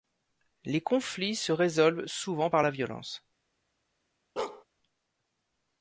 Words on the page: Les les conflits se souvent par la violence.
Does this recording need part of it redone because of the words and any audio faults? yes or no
yes